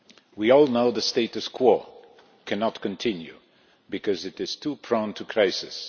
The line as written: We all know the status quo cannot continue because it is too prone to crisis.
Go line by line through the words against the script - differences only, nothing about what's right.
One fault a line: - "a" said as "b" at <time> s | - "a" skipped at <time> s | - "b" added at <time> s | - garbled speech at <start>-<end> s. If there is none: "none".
none